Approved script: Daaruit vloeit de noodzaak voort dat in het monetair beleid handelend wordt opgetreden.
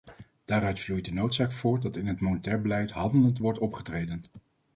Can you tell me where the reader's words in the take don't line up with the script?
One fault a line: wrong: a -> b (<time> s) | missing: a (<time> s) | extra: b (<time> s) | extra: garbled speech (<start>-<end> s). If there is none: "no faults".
no faults